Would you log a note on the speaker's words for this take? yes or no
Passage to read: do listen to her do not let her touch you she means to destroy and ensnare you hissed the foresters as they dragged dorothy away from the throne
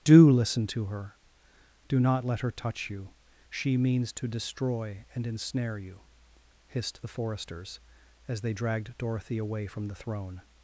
no